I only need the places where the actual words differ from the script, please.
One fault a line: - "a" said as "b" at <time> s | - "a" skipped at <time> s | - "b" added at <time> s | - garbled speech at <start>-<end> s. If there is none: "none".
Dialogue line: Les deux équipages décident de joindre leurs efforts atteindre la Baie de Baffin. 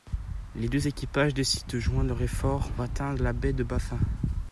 none